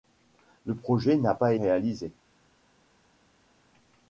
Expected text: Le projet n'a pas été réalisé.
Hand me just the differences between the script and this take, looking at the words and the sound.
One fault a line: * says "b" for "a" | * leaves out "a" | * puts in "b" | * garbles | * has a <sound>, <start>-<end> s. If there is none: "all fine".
* leaves out "été"